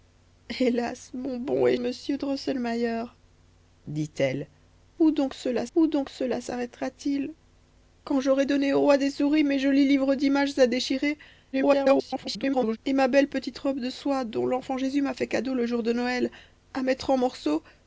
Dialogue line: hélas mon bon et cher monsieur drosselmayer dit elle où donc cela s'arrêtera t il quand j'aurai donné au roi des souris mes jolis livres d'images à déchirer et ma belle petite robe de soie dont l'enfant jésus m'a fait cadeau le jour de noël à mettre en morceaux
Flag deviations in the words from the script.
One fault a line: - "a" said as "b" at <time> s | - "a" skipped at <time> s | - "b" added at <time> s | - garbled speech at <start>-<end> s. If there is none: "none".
- "cher" skipped at 1.8 s
- "où donc cela" added at 5.7 s
- garbled speech at 11.5-12.8 s